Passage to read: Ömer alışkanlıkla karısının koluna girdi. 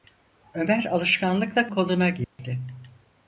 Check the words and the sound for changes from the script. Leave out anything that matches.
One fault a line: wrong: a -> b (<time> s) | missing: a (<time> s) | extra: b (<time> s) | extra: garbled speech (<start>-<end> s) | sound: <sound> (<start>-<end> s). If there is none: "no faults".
missing: karısının (1.7 s)
sound: dropout (2.2-2.4 s)